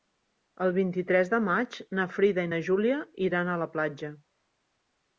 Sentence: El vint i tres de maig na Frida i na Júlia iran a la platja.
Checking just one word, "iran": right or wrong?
right